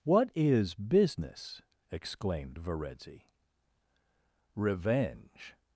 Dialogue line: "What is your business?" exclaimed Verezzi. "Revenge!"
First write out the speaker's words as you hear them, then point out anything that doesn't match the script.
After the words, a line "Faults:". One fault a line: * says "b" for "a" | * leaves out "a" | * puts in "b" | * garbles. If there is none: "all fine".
"What is business?" exclaimed Verezzi. "Revenge!"
Faults:
* leaves out "your"